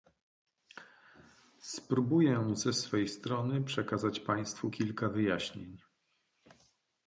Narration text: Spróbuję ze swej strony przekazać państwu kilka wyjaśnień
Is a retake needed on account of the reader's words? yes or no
no